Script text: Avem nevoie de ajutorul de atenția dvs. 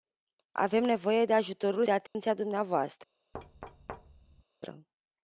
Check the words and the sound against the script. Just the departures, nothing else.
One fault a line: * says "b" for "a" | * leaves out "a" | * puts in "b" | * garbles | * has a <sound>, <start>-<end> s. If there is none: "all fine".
* has a dropout, 2.1-2.1 s
* has a thud, 3.3-4.4 s